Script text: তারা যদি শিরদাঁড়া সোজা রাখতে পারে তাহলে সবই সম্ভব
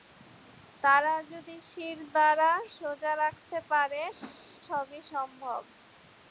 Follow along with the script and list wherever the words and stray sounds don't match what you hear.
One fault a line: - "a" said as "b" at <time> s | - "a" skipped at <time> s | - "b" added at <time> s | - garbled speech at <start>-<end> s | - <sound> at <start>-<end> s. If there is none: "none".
- "তাহলে" skipped at 4.0 s
- whoosh at 4.2-4.4 s